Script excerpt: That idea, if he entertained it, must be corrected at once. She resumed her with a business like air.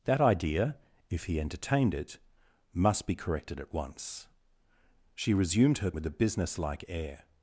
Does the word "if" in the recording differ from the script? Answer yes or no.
no